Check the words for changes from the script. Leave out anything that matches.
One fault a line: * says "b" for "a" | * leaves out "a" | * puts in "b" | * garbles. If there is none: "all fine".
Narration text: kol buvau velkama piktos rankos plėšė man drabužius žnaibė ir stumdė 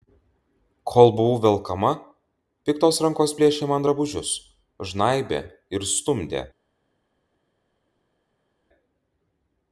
all fine